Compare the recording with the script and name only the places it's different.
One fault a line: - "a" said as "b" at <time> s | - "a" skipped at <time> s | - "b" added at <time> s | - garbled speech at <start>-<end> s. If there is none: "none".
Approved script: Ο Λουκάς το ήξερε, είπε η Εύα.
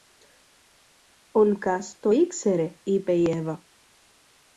none